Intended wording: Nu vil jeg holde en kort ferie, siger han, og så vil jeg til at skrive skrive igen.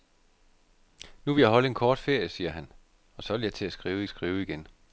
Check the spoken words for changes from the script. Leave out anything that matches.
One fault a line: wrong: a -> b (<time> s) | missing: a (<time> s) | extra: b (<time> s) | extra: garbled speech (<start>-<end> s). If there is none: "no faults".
no faults